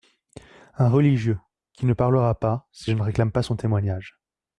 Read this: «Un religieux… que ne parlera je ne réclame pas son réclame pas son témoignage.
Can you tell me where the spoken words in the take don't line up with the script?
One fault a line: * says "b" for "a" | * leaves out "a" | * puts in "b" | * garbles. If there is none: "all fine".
* says "qui" for "que"
* puts in "pas si"
* leaves out "réclame pas son"